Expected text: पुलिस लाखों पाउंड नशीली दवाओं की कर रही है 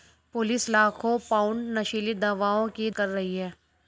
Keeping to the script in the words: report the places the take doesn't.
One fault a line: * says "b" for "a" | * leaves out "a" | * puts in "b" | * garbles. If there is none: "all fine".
all fine